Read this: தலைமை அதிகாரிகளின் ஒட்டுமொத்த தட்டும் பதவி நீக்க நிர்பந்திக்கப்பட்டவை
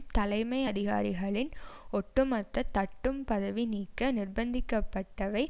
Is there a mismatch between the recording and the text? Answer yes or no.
no